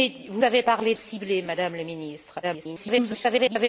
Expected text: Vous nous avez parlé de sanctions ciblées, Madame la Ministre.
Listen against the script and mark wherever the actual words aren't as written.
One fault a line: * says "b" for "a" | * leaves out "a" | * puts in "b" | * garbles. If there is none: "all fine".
* leaves out "nous"
* leaves out "de sanctions"
* garbles